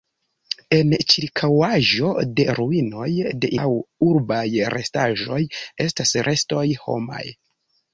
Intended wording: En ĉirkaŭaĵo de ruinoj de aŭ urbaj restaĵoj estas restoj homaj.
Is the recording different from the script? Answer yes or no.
no